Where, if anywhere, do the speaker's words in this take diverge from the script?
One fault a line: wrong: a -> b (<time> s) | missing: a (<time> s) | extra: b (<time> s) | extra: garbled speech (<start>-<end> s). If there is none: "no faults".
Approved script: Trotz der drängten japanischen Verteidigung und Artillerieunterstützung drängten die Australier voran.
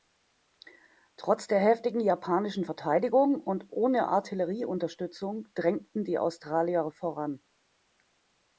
wrong: drängten -> heftigen (1.6 s)
extra: ohne (3.7 s)